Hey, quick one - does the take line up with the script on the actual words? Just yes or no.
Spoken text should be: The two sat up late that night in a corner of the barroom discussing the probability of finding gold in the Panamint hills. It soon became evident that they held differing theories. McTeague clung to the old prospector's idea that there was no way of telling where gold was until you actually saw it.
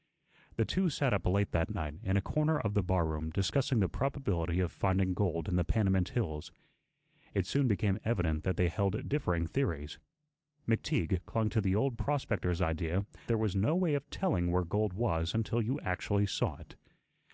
no